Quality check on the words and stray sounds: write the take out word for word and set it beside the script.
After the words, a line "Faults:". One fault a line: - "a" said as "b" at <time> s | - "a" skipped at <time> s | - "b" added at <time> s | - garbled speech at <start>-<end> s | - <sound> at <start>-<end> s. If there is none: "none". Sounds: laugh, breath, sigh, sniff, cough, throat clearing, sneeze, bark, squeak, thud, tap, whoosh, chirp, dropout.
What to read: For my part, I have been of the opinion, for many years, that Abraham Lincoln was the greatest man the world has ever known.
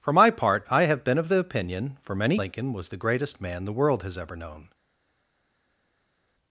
For my part, I have been of the opinion, for many Lincoln was the greatest man the world has ever known.
Faults:
- "years that Abraham" skipped at 2.4 s